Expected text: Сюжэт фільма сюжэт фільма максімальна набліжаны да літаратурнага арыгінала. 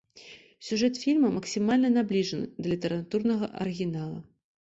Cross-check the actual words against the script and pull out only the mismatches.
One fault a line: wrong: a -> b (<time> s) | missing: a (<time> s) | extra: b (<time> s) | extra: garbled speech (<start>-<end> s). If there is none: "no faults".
missing: сюжэт фільма (1.3 s)